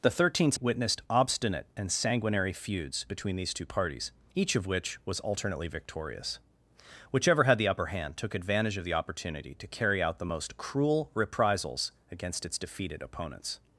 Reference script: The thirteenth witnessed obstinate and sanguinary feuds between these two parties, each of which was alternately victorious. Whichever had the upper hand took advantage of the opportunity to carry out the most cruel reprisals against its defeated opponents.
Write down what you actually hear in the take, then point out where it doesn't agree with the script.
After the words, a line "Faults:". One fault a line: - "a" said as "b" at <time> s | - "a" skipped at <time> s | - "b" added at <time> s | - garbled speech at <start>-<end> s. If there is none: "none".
The thirteenth witnessed obstinate and sanguinary feuds between these two parties, each of which was alternately victorious. Whichever had the upper hand took advantage of the opportunity to carry out the most cruel reprisals against its defeated opponents.
Faults:
none